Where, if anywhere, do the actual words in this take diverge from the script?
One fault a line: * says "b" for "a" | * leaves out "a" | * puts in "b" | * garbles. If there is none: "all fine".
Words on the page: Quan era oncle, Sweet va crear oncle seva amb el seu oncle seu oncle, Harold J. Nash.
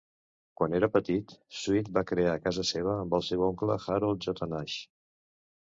* says "petit" for "oncle"
* says "casa" for "oncle"
* leaves out "seu oncle"